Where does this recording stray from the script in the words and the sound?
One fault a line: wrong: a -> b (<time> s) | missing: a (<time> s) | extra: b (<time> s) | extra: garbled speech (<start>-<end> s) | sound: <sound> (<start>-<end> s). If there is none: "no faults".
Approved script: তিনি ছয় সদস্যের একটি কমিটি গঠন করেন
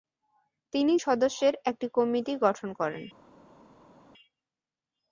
missing: ছয় (0.9 s)